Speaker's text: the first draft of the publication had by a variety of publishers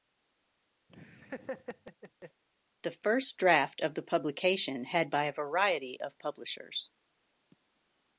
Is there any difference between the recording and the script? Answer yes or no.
no